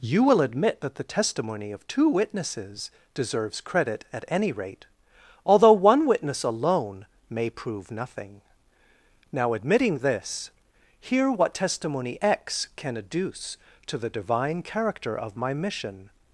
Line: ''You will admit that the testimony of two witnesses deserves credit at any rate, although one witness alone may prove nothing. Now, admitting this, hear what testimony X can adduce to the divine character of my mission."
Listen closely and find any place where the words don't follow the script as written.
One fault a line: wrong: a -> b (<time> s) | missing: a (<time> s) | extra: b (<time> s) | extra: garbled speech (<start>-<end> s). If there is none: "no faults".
no faults